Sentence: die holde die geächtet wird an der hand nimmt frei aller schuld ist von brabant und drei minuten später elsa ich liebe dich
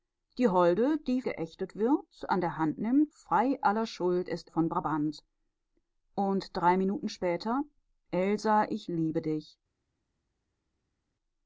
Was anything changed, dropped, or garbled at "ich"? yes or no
no